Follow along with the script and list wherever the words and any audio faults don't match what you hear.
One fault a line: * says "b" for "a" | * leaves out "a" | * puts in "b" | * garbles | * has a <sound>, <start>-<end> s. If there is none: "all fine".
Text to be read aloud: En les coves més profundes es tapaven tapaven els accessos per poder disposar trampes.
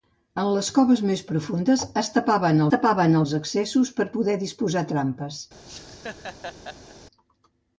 * has a laugh, 5.6-7.0 s